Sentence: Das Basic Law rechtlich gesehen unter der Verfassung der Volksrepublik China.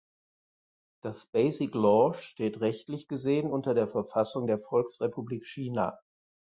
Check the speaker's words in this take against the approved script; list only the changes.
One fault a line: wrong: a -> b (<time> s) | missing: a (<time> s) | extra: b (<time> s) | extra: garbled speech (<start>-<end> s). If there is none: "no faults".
extra: steht (2.1 s)